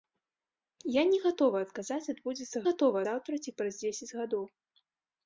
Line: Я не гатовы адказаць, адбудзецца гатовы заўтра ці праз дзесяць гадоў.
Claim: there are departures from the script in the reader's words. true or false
false